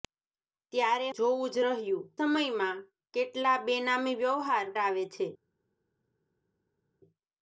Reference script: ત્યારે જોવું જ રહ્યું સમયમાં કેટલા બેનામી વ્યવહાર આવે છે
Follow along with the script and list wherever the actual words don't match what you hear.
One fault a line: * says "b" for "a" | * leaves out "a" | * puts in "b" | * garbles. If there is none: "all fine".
all fine